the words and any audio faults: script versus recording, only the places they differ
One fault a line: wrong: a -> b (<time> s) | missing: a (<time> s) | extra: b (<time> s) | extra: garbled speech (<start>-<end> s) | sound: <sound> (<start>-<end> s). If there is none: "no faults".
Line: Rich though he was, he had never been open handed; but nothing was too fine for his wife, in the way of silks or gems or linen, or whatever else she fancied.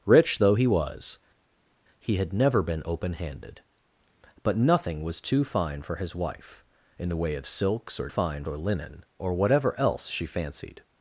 wrong: gems -> fine (8.1 s)